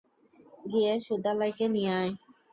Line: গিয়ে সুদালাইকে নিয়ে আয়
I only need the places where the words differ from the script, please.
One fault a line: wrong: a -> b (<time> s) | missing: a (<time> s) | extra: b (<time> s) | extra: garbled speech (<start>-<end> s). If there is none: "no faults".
no faults